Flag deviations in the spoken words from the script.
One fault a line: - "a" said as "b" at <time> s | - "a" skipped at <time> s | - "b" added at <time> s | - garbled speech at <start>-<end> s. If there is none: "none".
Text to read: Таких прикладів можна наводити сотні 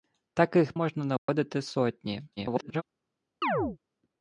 - "прикладів" skipped at 0.7 s
- garbled speech at 2.4-2.8 s